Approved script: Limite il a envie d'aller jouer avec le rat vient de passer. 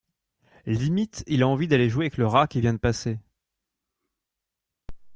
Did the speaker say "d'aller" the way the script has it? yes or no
yes